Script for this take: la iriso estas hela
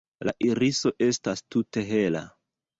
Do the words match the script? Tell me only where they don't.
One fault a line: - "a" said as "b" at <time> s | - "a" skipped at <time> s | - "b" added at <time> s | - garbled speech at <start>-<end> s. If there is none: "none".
- "tute" added at 1.6 s